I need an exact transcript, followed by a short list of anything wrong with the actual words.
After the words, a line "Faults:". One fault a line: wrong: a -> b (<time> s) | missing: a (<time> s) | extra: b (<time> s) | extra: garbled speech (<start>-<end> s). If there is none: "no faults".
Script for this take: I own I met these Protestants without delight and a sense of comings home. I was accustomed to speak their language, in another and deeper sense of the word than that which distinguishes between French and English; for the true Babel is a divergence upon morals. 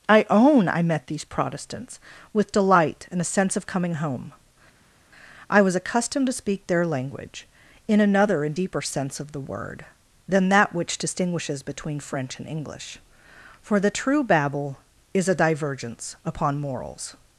I own I met these Protestants with delight and a sense of coming home. I was accustomed to speak their language, in another and deeper sense of the word than that which distinguishes between French and English; for the true Babel is a divergence upon morals.
Faults:
wrong: without -> with (2.3 s)
wrong: comings -> coming (3.7 s)